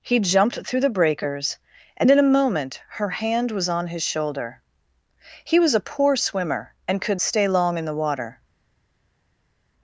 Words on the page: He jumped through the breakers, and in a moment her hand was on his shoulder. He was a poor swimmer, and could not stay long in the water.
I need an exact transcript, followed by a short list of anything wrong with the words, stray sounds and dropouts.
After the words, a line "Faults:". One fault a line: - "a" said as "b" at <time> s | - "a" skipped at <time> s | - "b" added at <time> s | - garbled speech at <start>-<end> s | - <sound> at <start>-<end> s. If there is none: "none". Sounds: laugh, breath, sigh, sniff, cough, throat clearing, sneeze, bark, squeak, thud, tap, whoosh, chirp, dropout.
He jumped through the breakers, and in a moment her hand was on his shoulder. He was a poor swimmer, and could stay long in the water.
Faults:
- "not" skipped at 7.2 s